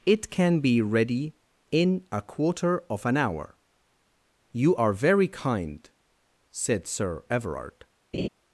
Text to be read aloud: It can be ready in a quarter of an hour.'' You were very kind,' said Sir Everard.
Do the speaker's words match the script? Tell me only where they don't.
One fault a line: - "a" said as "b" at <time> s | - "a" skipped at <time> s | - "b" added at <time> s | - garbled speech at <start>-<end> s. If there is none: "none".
- "were" said as "are" at 4.7 s